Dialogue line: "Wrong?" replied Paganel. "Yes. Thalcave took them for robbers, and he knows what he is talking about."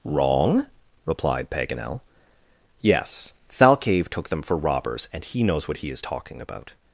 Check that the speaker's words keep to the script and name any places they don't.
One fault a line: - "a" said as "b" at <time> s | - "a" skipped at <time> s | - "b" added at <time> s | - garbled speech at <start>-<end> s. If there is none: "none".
none